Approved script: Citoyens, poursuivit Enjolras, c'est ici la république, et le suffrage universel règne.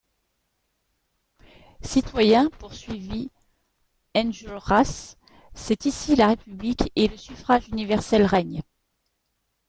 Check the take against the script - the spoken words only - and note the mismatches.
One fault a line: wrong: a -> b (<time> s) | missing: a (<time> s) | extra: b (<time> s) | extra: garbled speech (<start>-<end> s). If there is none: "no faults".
no faults